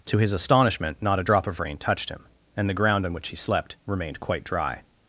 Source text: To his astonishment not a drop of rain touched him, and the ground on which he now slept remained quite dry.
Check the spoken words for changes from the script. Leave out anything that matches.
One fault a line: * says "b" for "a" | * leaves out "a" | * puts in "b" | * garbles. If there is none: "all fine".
* leaves out "now"